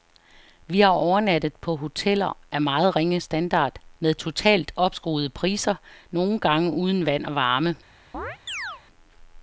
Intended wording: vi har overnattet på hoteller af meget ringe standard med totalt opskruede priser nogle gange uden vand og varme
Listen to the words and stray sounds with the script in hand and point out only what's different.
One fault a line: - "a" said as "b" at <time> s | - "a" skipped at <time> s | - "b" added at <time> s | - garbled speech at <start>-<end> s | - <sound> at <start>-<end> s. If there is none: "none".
- chirp at 8.1-8.8 s